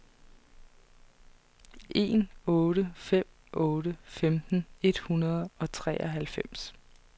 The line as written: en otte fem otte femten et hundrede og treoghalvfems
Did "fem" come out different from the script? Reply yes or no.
no